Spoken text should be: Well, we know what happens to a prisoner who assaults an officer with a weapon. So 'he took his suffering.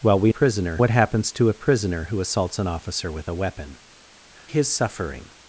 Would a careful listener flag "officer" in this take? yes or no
no